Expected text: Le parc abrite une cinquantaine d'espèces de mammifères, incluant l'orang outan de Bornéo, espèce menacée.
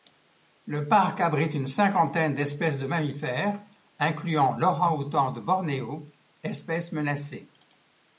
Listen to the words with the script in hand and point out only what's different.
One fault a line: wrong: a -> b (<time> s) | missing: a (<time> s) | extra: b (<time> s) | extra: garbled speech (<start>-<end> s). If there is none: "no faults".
no faults